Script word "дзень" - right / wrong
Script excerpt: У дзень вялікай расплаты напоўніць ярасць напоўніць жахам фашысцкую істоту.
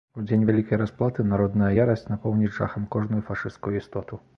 right